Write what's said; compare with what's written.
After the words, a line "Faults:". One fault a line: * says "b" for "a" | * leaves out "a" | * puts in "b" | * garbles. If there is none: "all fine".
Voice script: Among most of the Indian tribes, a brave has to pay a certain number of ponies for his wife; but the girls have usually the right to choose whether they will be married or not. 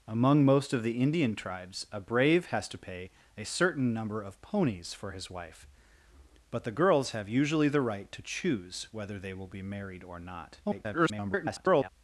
Among most of the Indian tribes, a brave has to pay a certain number of ponies for his wife; but the girls have usually the right to choose whether they will be married or not. [garbled]
Faults:
* garbles